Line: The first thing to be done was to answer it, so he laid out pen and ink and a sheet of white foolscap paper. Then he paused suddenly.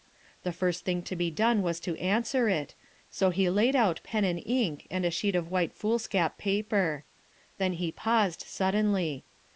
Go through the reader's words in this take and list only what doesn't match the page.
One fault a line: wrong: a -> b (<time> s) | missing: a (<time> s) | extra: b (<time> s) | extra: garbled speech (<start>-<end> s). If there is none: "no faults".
no faults